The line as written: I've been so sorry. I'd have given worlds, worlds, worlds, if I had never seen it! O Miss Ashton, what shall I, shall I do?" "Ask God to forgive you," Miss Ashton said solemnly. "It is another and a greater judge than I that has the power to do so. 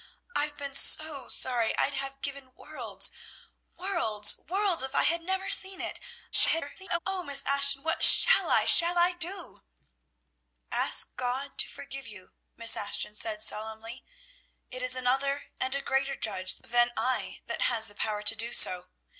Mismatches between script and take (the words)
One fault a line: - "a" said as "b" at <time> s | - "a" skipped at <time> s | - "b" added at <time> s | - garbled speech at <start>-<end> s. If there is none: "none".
- garbled speech at 6.3-7.0 s